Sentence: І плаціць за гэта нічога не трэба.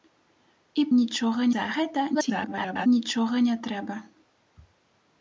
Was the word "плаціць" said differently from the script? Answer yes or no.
yes